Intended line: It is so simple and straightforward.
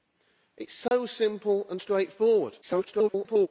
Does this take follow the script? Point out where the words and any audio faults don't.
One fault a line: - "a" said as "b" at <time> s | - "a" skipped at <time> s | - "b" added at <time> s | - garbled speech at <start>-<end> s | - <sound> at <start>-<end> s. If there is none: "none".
- dropout at 0.9-0.9 s
- garbled speech at 2.6-3.5 s